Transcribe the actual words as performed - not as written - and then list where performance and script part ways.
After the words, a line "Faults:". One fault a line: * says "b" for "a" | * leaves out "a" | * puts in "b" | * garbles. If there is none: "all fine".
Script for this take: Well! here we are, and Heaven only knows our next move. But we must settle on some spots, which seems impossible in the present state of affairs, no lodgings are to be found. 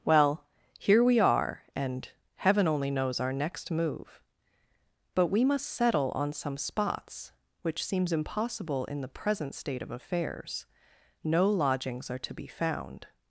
Well! here we are, and Heaven only knows our next move. But we must settle on some spots, which seems impossible in the present state of affairs, no lodgings are to be found.
Faults:
all fine